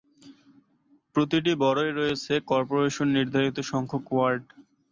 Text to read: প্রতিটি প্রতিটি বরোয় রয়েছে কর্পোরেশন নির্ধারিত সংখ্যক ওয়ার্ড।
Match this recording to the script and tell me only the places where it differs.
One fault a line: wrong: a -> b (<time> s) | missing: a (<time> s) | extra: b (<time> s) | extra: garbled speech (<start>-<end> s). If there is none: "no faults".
missing: প্রতিটি (1.5 s)